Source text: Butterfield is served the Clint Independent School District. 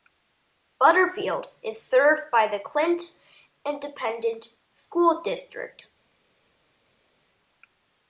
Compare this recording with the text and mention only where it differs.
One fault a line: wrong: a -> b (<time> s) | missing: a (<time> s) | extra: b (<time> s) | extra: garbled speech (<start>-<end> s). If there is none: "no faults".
extra: by (2.3 s)